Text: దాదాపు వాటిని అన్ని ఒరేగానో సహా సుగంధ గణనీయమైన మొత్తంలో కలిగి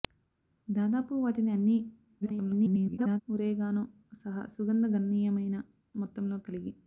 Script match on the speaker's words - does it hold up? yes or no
no